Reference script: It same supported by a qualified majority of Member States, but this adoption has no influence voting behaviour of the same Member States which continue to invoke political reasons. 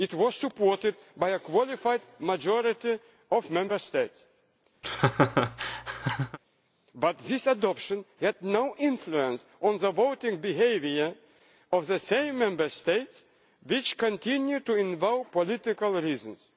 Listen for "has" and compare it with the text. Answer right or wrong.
wrong